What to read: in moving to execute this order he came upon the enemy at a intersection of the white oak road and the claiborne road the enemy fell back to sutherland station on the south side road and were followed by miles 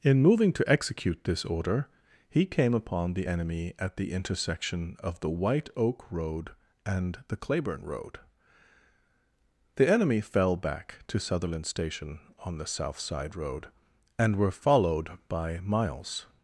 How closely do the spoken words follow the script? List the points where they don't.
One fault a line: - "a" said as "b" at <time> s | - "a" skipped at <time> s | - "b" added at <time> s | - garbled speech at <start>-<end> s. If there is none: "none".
- "a" said as "the" at 4.0 s